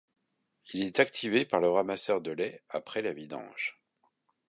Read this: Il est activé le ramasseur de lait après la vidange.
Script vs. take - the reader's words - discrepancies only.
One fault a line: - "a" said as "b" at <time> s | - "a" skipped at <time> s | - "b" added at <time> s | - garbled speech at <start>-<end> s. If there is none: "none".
- "par" added at 1.4 s